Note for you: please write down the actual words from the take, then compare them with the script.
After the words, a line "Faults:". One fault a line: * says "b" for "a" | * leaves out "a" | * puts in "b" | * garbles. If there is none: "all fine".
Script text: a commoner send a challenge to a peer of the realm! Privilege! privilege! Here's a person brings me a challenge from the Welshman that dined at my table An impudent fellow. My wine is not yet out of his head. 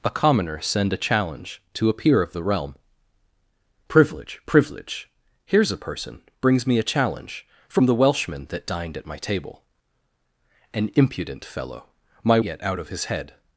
a commoner send a challenge to a peer of the realm! Privilege! privilege! Here's a person brings me a challenge from the Welshman that dined at my table An impudent fellow. My yet out of his head.
Faults:
* leaves out "wine is not"